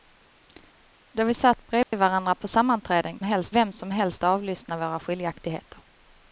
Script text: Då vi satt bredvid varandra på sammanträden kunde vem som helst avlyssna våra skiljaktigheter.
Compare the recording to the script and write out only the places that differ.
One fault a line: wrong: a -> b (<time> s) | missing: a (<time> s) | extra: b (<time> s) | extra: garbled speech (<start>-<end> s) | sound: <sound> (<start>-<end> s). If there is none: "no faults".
sound: dropout (1.8-1.9 s)
wrong: kunde -> helst (3.2 s)